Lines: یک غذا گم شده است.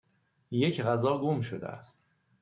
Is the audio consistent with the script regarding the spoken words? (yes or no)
yes